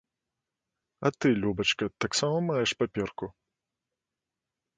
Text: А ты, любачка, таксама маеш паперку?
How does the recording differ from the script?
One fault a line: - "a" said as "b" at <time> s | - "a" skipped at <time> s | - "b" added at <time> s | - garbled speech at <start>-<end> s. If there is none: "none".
none